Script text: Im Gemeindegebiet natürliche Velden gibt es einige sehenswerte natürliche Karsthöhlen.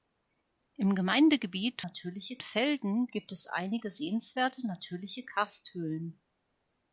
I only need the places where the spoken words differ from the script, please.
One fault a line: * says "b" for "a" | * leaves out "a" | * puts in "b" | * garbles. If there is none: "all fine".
all fine